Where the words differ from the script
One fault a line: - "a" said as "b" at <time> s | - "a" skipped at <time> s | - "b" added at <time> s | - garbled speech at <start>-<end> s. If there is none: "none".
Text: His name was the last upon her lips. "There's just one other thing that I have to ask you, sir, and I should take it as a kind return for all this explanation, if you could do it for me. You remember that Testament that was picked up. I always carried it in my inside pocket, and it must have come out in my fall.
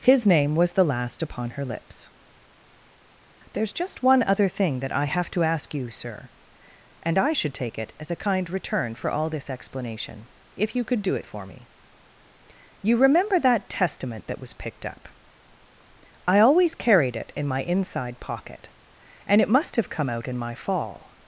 none